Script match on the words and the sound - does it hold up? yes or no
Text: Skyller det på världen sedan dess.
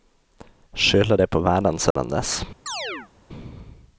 no